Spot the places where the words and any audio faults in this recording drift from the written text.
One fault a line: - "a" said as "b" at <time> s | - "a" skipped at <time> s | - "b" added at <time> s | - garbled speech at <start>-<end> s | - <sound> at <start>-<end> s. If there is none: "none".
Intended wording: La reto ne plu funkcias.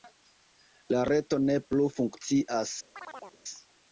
- chirp at 2.9-3.4 s